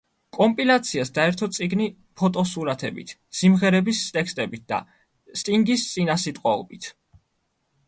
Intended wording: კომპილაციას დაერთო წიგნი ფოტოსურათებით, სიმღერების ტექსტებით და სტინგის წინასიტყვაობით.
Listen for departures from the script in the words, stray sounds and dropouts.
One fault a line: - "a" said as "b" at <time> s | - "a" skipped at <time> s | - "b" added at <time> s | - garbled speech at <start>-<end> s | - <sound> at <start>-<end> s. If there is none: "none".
none